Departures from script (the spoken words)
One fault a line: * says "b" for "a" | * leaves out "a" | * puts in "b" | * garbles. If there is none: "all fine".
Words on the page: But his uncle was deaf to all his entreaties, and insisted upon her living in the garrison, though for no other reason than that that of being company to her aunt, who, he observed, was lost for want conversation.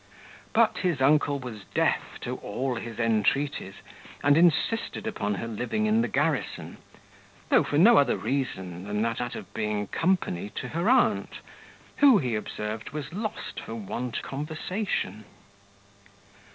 all fine